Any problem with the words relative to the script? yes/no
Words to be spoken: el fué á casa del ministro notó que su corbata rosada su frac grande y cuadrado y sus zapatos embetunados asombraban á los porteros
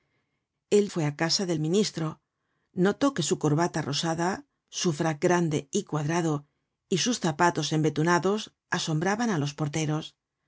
no